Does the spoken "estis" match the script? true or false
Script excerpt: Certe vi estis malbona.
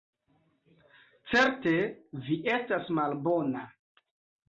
false